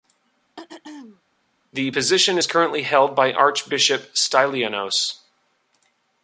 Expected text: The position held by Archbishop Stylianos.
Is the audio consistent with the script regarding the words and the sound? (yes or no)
no